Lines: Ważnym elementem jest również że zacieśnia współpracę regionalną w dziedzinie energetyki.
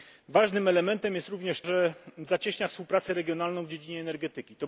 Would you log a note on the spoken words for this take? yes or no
no